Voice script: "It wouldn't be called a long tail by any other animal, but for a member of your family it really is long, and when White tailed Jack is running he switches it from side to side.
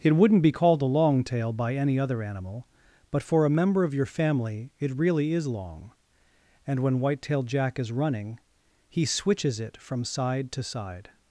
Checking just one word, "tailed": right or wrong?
right